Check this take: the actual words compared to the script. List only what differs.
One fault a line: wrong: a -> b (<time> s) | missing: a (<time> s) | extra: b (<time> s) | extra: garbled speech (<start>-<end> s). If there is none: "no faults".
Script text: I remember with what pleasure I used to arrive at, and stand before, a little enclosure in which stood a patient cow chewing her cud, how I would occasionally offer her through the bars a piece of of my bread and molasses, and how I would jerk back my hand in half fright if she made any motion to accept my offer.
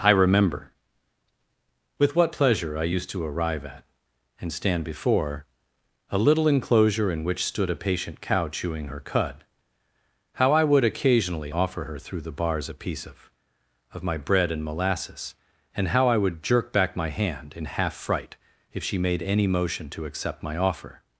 no faults